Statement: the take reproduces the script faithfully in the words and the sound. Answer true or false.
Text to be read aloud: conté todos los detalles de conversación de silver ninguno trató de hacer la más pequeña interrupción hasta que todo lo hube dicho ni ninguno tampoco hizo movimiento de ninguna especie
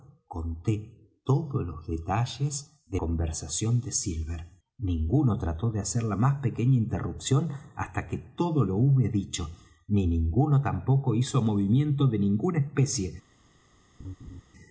false